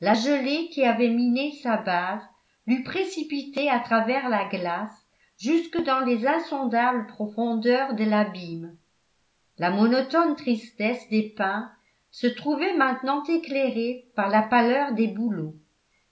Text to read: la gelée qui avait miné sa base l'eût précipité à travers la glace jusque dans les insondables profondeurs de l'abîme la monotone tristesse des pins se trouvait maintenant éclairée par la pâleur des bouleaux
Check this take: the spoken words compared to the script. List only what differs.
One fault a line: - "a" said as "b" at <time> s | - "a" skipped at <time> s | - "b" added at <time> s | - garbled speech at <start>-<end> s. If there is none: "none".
none